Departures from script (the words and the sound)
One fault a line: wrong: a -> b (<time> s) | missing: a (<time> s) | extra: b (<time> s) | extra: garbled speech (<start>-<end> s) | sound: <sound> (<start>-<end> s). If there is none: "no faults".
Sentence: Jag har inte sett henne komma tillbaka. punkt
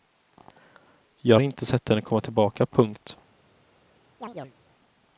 sound: chirp (4.2-4.6 s)